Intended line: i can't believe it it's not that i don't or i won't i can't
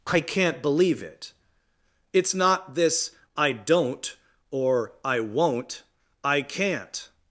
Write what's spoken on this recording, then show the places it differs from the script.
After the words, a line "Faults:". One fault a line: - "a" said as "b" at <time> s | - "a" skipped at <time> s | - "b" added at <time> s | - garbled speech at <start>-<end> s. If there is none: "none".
i can't believe it it's not this i don't or i won't i can't
Faults:
- "that" said as "this" at 2.8 s